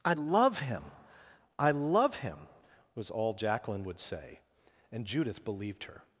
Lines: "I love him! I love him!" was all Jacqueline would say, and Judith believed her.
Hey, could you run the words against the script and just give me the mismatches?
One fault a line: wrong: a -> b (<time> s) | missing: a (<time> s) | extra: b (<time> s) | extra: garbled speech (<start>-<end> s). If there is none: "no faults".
no faults